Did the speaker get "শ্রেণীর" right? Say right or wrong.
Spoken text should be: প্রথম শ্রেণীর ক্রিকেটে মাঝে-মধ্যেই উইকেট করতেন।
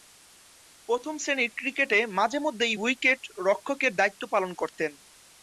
right